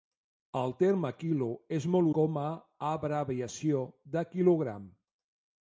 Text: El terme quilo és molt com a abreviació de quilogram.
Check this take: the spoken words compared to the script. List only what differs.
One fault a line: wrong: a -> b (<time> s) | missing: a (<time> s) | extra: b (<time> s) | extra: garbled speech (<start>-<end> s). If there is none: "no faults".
no faults